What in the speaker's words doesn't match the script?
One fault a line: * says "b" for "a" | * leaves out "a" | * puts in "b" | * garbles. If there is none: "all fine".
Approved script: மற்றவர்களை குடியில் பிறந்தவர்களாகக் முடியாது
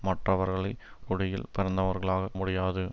all fine